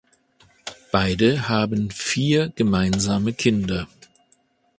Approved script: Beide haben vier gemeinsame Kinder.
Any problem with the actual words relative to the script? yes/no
no